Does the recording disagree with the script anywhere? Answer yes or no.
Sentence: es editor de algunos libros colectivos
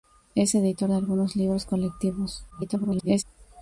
yes